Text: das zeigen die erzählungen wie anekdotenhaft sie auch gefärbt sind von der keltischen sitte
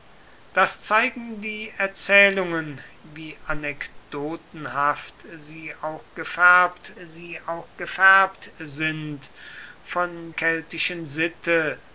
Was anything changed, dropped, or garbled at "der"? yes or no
yes